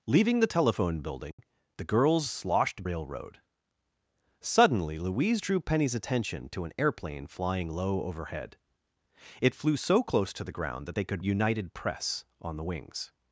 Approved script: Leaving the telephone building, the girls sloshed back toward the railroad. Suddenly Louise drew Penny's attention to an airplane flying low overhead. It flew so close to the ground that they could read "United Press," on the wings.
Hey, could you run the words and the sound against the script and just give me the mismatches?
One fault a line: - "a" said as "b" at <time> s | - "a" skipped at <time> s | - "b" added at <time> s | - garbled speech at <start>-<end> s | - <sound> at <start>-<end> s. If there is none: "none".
- dropout at 1.3-1.4 s
- "back toward the" skipped at 2.8 s
- "read" skipped at 11.2 s